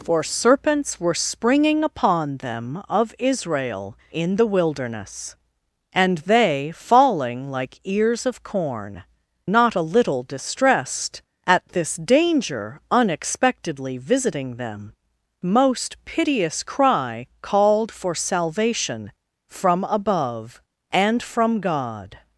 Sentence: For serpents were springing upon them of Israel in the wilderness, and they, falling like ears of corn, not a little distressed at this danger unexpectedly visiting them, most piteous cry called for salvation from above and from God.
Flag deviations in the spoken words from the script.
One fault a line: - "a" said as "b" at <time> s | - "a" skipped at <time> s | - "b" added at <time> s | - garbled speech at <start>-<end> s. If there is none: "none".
none